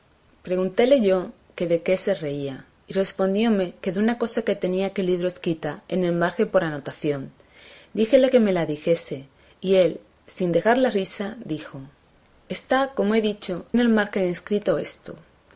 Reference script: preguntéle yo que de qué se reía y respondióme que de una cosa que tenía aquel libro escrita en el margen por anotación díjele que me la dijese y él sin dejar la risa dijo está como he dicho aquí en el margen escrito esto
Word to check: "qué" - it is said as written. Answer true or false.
true